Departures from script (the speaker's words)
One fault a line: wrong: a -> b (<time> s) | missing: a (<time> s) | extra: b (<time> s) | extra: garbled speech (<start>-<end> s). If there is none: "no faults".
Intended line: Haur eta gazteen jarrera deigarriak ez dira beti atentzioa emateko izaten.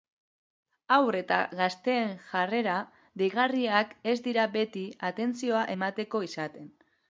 no faults